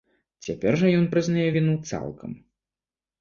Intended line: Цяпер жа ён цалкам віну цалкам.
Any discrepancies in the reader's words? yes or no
yes